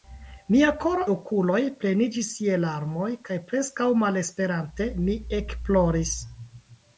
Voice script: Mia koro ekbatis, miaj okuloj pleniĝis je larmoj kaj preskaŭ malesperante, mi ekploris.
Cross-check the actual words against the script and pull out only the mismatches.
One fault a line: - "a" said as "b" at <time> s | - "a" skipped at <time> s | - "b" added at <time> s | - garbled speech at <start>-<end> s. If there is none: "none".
- "ekbatis miaj" skipped at 1.0 s